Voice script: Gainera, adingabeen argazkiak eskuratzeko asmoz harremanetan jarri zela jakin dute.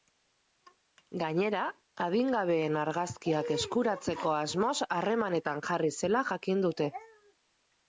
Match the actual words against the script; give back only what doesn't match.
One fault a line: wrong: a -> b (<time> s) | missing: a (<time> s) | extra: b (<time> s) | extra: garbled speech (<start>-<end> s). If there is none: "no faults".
no faults